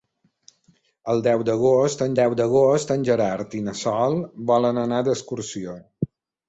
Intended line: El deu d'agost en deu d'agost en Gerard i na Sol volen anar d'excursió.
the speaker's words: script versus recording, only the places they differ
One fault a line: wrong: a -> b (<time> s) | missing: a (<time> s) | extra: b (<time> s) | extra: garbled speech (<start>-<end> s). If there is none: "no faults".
no faults